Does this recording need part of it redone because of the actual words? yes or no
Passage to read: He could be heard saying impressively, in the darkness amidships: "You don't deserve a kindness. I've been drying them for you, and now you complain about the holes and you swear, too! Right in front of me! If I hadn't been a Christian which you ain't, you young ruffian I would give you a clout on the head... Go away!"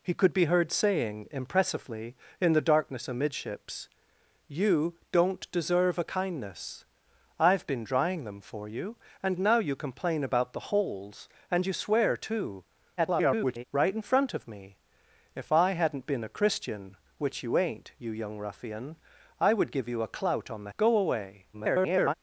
yes